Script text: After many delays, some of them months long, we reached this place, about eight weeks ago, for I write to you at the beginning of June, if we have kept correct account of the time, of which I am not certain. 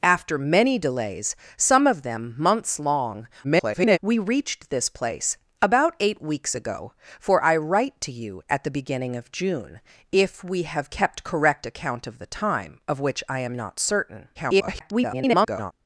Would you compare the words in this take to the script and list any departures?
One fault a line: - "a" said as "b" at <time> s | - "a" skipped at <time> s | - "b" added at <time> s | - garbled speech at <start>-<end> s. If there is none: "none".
- garbled speech at 3.4-4.0 s
- garbled speech at 14.3-15.7 s